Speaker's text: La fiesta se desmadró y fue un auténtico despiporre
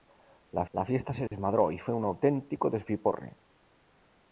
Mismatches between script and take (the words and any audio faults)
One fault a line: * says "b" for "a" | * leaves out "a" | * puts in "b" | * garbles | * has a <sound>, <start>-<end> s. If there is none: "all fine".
* puts in "la"
* has a dropout, 1.3-1.3 s